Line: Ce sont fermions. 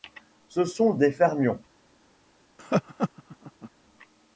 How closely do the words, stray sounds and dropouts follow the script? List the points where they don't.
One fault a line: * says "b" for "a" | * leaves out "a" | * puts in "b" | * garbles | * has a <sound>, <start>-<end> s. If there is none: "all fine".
* puts in "des"
* has a laugh, 2.6-3.7 s